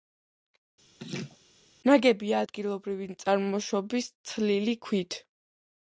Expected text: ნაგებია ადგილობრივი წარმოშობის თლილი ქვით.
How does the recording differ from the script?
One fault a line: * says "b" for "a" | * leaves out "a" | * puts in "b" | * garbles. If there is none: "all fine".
all fine